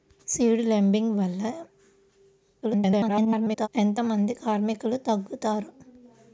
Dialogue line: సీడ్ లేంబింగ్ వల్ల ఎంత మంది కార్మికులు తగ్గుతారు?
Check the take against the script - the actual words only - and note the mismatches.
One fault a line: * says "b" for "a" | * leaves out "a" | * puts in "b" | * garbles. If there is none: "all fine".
* garbles